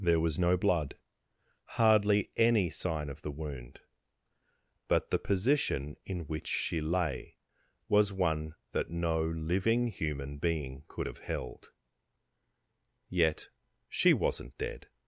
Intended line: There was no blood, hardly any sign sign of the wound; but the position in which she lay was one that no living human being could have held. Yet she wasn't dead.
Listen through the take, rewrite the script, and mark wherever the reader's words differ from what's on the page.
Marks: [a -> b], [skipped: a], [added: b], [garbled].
There was no blood, hardly any sign [skipped: sign] of the wound; but the position in which she lay was one that no living human being could have held. Yet she wasn't dead.